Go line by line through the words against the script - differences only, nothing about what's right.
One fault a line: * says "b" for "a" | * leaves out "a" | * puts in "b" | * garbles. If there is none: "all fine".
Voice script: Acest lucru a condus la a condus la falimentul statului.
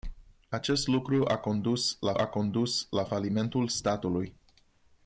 all fine